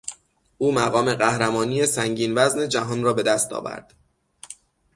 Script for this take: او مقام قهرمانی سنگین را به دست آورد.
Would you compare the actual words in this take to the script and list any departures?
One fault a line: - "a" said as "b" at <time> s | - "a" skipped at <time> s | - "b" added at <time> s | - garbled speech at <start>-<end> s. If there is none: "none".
- "وزن جهان" added at 2.4 s